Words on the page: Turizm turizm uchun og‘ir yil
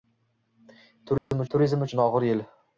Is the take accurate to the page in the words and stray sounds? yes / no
no